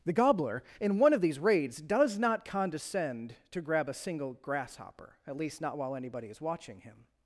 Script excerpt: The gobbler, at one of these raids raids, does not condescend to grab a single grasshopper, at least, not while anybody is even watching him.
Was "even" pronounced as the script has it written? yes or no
no